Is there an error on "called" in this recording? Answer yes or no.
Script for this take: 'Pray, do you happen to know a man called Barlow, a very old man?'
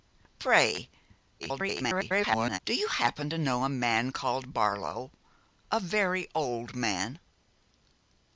no